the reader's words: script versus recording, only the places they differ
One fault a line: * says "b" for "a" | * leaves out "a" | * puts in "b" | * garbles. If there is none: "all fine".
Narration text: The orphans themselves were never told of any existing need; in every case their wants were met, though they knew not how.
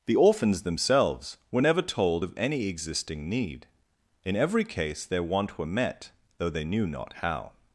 * says "want" for "wants"